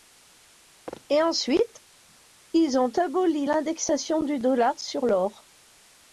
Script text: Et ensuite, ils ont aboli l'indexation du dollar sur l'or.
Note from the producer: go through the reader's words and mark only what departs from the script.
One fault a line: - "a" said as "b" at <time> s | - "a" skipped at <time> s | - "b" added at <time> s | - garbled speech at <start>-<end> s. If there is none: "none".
none